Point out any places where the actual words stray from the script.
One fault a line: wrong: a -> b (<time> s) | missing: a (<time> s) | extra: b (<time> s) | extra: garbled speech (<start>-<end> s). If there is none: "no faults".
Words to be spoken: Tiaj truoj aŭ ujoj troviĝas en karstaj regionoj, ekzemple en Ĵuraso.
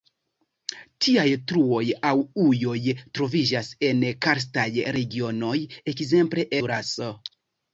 missing: en (6.5 s)